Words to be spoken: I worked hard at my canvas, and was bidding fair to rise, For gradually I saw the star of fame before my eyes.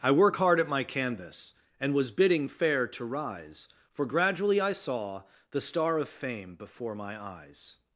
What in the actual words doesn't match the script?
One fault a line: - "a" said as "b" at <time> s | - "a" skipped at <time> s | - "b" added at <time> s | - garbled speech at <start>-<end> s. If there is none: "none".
- "worked" said as "work" at 0.1 s